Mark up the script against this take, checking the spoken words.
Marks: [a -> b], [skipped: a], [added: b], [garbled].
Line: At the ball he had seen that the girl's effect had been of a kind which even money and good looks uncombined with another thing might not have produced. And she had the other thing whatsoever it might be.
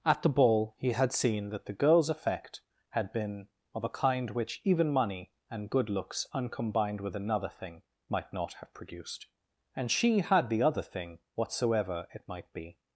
At the ball he had seen that the girl's effect had been of a kind which even money and good looks uncombined with another thing might not have produced. And she had the other thing whatsoever it might be.